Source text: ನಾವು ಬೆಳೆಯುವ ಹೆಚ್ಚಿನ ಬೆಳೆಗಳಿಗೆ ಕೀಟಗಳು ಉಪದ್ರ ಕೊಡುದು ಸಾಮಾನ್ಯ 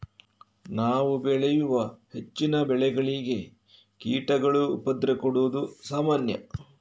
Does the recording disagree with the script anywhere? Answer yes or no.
no